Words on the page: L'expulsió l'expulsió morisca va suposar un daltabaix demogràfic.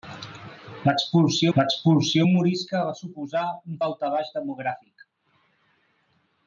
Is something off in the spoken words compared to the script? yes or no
no